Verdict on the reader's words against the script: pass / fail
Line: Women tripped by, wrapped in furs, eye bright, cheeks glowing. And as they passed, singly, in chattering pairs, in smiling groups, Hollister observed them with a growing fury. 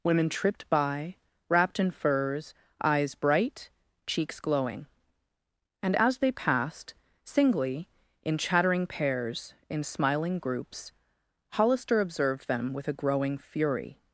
fail